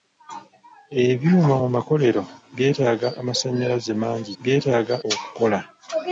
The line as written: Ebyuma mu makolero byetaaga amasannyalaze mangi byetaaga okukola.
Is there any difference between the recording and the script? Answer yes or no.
no